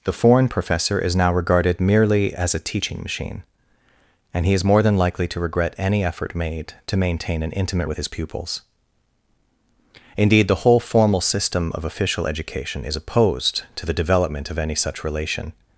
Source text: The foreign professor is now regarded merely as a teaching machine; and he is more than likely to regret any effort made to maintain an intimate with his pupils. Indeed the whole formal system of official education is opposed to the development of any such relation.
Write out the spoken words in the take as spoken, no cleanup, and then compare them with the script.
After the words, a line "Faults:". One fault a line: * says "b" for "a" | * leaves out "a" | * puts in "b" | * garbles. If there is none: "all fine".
The foreign professor is now regarded merely as a teaching machine; and he is more than likely to regret any effort made to maintain an intimate with his pupils. Indeed the whole formal system of official education is opposed to the development of any such relation.
Faults:
all fine